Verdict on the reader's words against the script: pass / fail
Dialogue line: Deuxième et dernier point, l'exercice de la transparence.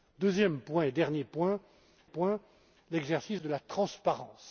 fail